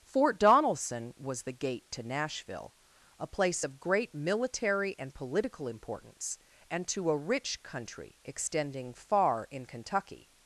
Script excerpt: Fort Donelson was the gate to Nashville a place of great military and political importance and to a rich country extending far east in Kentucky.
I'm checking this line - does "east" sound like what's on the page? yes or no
no